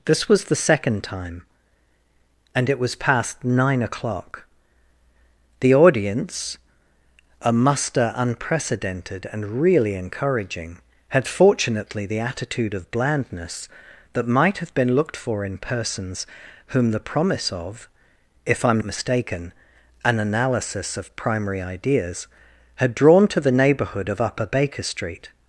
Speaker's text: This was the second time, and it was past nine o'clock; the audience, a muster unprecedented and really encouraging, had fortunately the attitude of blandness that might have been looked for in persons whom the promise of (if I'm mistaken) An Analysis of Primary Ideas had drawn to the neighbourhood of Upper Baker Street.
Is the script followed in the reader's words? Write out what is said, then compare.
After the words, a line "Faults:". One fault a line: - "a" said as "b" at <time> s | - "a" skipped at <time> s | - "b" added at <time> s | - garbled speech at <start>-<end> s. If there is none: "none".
This was the second time, and it was past nine o'clock; the audience, a muster unprecedented and really encouraging, had fortunately the attitude of blandness that might have been looked for in persons whom the promise of (if I'm mistaken) An Analysis of Primary Ideas had drawn to the neighbourhood of Upper Baker Street.
Faults:
none